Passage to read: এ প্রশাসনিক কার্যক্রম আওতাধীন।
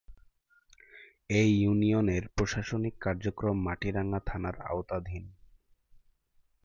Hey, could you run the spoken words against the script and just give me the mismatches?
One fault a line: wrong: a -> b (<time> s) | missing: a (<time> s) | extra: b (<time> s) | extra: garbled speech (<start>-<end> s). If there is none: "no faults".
extra: ইউনিয়নের (1.6 s)
extra: মাটিরাঙ্গা থানার (3.6 s)